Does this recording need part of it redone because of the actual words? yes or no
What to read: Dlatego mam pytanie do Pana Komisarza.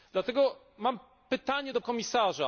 yes